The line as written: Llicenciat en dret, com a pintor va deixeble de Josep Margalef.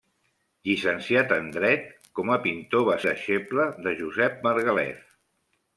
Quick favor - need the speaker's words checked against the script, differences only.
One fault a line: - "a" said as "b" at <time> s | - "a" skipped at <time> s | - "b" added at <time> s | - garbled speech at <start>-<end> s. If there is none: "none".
none